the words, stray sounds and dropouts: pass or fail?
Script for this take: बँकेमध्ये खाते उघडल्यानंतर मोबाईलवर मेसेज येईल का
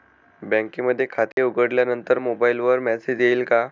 fail